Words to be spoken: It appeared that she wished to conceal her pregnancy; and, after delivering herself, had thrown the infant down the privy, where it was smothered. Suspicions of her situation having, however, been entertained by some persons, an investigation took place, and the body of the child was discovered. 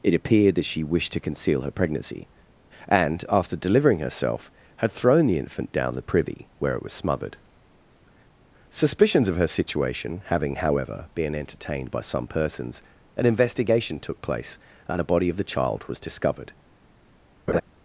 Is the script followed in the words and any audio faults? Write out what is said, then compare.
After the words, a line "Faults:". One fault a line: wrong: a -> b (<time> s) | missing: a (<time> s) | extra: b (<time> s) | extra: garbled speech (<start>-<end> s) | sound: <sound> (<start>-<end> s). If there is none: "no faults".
It appeared that she wished to conceal her pregnancy; and, after delivering herself, had thrown the infant down the privy, where it was smothered. Suspicions of her situation having, however, been entertained by some persons, an investigation took place, and a body of the child was discovered.
Faults:
wrong: the -> a (15.0 s)
sound: laugh (17.5-17.6 s)